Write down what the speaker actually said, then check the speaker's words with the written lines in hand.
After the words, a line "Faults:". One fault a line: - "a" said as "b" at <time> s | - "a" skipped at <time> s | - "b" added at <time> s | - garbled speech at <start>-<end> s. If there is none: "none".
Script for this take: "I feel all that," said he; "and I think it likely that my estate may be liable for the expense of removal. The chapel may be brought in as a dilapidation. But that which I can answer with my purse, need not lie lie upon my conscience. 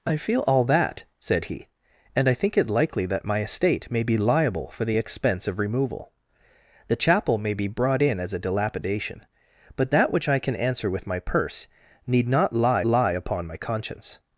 "I feel all that," said he; "and I think it likely that my estate may be liable for the expense of removal. The chapel may be brought in as a dilapidation. But that which I can answer with my purse, need not lie lie upon my conscience.
Faults:
none